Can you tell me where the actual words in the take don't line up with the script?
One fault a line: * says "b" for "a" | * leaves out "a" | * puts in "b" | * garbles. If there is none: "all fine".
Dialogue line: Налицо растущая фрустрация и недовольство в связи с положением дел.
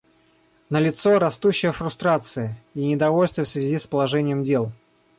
all fine